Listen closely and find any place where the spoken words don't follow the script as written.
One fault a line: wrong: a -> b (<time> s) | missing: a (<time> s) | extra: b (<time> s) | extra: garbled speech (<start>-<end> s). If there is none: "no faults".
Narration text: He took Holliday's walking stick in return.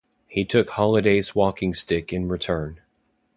no faults